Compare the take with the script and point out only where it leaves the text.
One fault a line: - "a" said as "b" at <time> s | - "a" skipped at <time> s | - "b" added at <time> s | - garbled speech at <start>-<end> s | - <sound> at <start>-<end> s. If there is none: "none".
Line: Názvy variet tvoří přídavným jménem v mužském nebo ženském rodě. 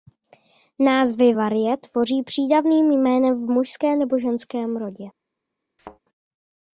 - thud at 5.8-6.0 s